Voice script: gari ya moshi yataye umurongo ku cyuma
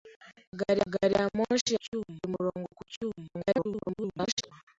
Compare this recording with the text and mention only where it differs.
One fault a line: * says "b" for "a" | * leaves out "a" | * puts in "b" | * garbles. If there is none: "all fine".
* puts in "gari"
* says "cyuma" for "yataye"
* garbles